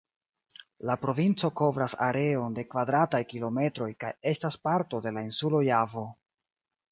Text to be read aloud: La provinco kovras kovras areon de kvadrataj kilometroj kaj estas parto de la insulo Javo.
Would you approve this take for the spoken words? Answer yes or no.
no